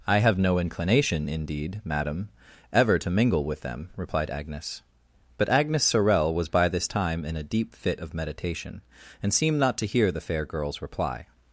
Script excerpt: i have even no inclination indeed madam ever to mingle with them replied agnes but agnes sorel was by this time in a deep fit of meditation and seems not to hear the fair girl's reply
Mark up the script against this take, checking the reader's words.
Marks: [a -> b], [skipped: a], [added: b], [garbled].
i have [skipped: even] no inclination indeed madam ever to mingle with them replied agnes but agnes sorel was by this time in a deep fit of meditation and [seems -> seemed] not to hear the fair girl's reply